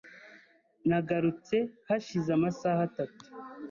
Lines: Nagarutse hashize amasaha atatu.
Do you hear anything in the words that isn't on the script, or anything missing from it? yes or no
no